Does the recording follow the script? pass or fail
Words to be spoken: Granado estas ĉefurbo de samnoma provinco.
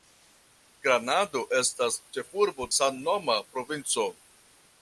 fail